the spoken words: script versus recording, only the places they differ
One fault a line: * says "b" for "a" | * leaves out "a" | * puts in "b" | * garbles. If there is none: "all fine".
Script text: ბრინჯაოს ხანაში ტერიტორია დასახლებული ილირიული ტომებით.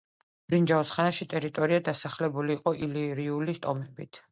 * puts in "იყო"